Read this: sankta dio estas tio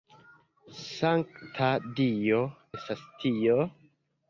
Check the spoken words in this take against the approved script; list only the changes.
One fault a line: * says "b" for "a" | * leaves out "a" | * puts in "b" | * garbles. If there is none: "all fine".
all fine